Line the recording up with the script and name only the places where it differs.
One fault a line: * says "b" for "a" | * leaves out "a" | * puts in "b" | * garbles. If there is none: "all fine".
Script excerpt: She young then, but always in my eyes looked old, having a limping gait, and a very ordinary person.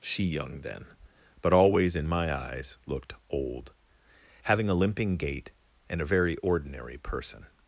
all fine